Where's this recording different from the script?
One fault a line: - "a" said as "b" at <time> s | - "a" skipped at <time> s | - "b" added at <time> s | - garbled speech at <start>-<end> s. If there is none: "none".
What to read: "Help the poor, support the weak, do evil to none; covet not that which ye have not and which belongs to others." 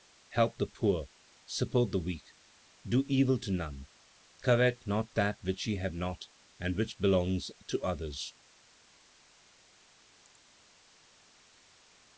none